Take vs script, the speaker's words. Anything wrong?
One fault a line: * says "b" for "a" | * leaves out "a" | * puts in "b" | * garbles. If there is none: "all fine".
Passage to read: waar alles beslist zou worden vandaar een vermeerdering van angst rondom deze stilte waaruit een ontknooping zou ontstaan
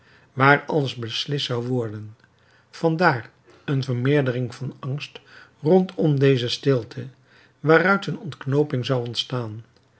all fine